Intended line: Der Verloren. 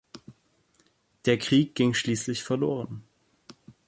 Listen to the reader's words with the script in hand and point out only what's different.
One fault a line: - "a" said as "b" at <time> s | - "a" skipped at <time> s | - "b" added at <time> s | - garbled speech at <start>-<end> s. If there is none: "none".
- "Krieg ging schließlich" added at 1.4 s